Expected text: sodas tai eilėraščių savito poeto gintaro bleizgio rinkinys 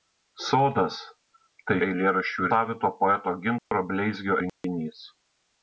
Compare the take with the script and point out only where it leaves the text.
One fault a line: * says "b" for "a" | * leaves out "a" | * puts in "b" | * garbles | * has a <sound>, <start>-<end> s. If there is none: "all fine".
* has a dropout, 3.6-3.7 s
* has a dropout, 4.5-4.6 s